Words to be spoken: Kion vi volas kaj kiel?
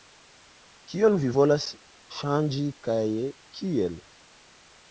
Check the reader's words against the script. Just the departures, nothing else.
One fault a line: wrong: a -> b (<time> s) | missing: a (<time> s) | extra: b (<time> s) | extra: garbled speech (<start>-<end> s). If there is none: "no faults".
extra: ŝanĝi (2.2 s)